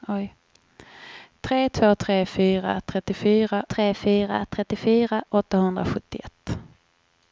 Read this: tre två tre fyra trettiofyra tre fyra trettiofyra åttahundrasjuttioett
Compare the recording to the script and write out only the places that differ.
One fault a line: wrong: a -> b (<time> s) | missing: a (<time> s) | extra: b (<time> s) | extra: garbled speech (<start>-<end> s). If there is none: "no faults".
no faults